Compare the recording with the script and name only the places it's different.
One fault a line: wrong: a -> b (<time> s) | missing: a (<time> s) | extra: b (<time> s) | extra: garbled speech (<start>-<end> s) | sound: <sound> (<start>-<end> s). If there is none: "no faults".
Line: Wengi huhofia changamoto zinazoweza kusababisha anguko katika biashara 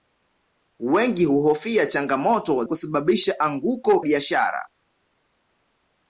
missing: zinazoweza (2.6 s)
missing: katika (4.0 s)